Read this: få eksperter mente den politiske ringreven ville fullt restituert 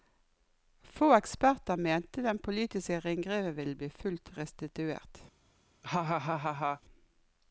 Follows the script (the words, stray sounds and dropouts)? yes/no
no